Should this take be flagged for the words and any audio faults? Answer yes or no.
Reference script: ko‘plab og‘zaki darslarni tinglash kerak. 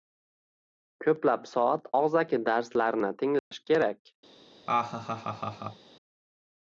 yes